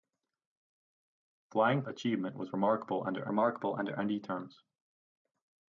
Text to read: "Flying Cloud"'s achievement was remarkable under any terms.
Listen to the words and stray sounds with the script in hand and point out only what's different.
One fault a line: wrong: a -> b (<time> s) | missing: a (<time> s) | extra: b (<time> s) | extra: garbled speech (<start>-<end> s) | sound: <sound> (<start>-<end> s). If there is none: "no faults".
missing: Cloud"'s (1.8 s)
extra: remarkable under (3.3 s)